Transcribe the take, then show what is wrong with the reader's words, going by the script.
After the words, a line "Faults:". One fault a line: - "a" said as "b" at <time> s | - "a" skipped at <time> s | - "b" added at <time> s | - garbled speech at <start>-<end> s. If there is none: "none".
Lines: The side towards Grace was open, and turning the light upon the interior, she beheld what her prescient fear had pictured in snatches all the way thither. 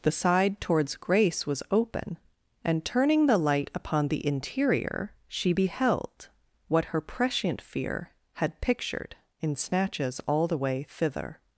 The side towards Grace was open, and turning the light upon the interior, she beheld what her prescient fear had pictured in snatches all the way thither.
Faults:
none